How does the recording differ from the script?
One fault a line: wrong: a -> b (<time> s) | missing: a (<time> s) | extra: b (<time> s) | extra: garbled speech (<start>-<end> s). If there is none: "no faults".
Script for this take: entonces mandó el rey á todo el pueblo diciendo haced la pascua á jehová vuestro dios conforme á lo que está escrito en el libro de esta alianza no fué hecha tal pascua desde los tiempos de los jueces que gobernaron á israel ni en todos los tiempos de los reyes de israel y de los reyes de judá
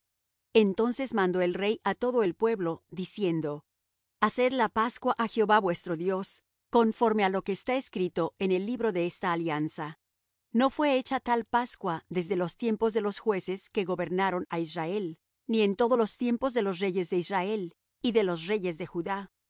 no faults